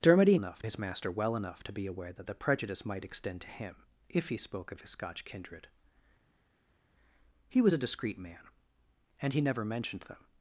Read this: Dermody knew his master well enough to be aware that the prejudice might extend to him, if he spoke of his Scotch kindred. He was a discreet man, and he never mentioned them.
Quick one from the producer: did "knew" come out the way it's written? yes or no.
no